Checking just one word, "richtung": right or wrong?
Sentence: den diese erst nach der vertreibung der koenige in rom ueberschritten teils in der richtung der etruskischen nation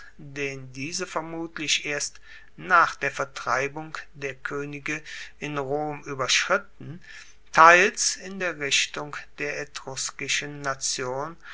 right